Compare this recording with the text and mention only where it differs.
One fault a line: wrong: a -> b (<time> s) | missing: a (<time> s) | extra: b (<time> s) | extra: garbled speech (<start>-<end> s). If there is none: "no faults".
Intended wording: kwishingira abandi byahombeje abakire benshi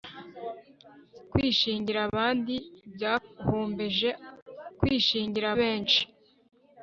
wrong: abakire -> kwishingira (4.8 s)